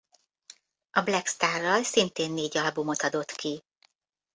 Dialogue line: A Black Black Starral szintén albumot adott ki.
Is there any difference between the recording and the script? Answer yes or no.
yes